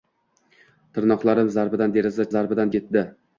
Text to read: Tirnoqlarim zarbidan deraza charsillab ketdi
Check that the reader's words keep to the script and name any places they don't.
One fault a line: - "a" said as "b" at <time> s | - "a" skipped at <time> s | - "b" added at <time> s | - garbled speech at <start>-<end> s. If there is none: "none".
- "charsillab" said as "zarbidan" at 2.3 s